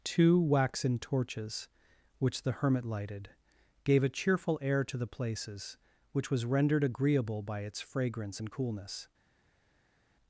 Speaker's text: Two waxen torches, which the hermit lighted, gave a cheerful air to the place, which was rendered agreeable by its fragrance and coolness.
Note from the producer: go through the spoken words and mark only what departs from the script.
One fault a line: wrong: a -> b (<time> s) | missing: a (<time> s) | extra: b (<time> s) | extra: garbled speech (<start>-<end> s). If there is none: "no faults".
wrong: place -> places (5.1 s)